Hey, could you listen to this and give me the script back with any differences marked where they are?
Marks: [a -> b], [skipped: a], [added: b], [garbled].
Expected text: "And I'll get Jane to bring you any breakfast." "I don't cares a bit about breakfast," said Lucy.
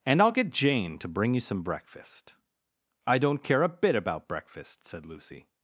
"And I'll get Jane to bring you [any -> some] breakfast." "I don't [cares -> care] a bit about breakfast," said Lucy.